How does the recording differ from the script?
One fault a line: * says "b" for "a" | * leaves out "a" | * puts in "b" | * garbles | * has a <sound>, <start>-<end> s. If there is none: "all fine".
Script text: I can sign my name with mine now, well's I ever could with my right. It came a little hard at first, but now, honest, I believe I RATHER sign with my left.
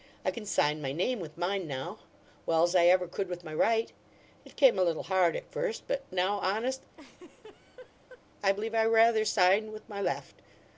* has a laugh, 6.9-8.2 s